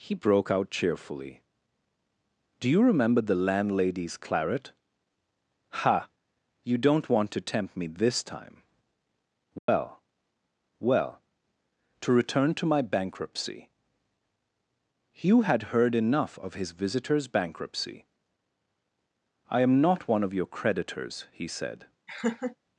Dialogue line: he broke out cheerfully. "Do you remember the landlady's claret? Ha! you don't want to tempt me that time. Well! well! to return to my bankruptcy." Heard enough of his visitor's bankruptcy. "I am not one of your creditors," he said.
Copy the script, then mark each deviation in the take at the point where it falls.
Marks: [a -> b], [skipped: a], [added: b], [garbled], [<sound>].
he broke out cheerfully. "Do you remember the landlady's claret? Ha! you don't want to tempt me [that -> this] time. Well! [dropout] well! to return to my bankruptcy." [added: Hugh had] Heard enough of his visitor's bankruptcy. "I am not one of your creditors," he said. [laugh]